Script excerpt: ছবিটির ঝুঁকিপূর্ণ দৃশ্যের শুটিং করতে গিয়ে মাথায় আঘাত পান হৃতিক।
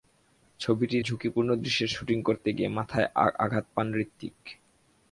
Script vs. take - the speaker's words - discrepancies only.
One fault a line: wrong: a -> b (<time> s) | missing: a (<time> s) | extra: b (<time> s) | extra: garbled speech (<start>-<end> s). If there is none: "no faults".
no faults